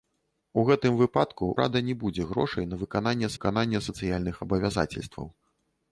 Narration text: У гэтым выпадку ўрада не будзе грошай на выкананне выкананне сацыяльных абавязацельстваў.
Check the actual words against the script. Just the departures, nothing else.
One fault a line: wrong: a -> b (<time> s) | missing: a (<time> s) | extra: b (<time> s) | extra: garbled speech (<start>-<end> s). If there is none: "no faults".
no faults